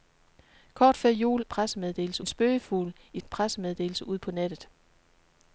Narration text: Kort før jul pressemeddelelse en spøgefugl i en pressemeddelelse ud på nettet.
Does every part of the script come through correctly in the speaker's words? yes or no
yes